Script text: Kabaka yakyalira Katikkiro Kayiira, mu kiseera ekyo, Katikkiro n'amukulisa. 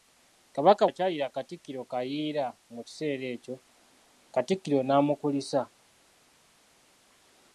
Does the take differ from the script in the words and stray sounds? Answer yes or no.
no